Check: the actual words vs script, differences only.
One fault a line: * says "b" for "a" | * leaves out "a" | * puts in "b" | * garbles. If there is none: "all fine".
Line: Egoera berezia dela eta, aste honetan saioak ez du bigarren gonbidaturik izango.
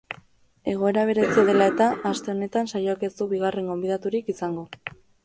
all fine